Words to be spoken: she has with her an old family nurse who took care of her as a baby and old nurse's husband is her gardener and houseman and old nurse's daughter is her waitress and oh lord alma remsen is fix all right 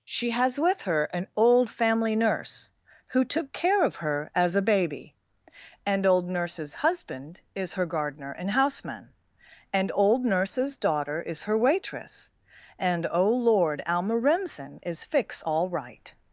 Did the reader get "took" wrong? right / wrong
right